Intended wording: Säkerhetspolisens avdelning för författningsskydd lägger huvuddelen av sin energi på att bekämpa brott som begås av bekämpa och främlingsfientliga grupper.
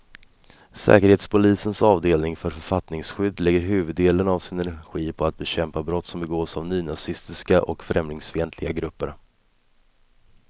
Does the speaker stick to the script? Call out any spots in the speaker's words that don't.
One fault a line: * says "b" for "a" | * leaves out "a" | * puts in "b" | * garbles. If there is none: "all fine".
* says "nynazistiska" for "bekämpa"